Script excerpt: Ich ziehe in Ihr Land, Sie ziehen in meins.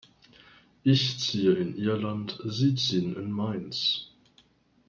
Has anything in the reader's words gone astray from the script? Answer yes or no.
no